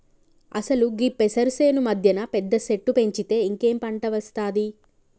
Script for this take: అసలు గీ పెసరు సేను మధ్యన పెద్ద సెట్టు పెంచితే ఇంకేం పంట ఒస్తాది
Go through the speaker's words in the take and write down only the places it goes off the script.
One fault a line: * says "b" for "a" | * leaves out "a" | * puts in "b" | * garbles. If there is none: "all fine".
all fine